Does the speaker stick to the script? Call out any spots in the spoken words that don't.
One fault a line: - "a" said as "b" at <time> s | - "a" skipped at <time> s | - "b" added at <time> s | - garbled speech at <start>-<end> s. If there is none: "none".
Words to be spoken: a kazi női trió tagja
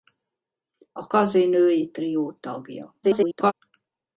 - garbled speech at 3.0-3.5 s